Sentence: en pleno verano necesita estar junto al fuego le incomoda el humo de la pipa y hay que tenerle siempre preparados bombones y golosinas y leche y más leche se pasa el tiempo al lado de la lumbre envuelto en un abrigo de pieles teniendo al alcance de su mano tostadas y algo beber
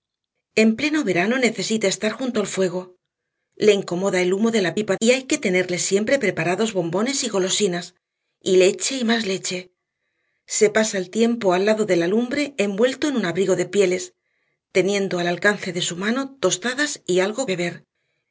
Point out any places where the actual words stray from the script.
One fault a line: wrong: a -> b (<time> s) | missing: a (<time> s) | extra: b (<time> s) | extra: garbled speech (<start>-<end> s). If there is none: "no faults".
no faults